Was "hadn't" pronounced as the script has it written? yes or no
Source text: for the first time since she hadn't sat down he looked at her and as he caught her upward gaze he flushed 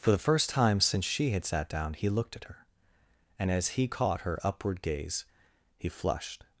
no